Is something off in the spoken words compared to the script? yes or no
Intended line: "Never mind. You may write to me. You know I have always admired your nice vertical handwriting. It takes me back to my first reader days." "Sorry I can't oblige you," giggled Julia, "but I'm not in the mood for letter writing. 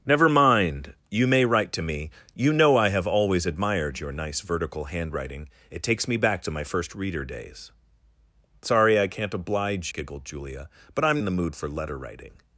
yes